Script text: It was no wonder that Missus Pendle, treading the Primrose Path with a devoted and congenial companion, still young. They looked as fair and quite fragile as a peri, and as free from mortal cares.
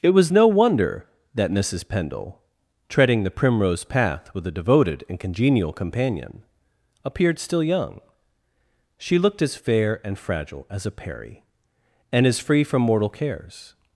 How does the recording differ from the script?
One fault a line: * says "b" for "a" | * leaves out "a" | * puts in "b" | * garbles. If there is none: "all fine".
* puts in "appeared"
* says "She" for "They"
* leaves out "quite"